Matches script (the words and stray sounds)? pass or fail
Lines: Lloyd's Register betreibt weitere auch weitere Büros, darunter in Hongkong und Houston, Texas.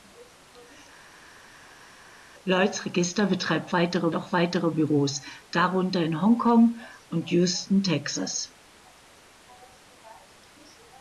pass